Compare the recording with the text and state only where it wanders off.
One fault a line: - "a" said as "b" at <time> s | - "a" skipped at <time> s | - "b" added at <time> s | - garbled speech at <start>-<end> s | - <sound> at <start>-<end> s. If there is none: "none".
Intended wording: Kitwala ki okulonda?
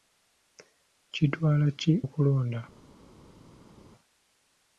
none